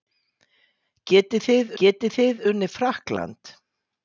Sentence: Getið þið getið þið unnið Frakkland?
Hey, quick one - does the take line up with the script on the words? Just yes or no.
yes